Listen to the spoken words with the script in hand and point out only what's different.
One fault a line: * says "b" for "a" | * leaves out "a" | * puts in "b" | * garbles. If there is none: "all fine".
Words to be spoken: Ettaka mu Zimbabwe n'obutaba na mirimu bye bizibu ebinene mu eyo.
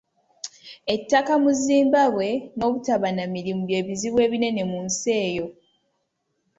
* puts in "nsi"